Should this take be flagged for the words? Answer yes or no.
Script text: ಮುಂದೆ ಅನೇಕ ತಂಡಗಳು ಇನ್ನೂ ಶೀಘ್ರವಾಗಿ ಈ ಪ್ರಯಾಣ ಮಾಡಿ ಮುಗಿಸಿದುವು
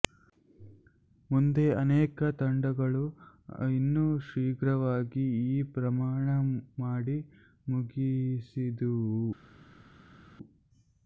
no